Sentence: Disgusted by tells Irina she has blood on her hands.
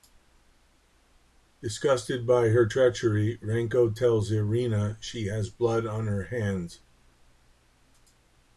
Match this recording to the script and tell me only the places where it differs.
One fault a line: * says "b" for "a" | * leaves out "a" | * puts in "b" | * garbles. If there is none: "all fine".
* puts in "her treachery Renko"